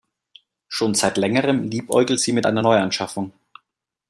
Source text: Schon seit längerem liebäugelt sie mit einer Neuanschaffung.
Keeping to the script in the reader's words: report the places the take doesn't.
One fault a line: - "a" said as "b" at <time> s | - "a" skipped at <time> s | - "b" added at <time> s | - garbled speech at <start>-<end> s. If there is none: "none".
none